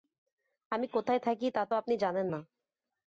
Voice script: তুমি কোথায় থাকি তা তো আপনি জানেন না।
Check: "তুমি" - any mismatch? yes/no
yes